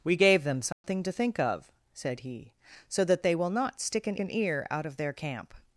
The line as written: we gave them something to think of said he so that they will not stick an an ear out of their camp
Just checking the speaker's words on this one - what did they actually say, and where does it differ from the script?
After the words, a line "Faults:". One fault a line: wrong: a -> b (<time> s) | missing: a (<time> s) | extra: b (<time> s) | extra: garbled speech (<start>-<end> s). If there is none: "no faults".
we gave them something to think of said he so that they will not stick an an ear out of their camp
Faults:
no faults